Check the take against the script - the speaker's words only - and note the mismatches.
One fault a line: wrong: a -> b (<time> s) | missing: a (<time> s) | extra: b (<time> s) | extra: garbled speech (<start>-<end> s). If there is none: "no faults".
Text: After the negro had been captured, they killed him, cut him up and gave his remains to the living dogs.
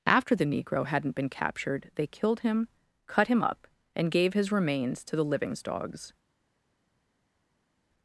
wrong: had -> hadn't (0.8 s)
wrong: living -> livings (5.2 s)